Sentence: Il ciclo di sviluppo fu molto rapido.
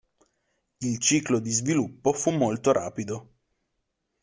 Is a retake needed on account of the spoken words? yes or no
no